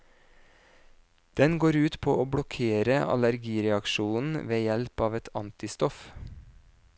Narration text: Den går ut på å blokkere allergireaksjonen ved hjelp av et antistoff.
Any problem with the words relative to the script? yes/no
no